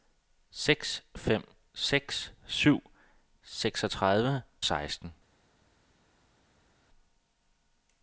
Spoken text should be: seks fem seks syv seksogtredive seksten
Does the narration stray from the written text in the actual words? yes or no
no